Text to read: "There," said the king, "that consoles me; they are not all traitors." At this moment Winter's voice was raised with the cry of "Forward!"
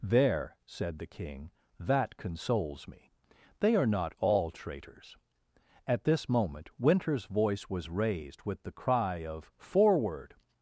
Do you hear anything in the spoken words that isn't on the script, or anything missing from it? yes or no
no